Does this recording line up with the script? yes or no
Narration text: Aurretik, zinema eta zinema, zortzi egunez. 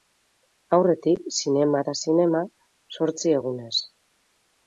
yes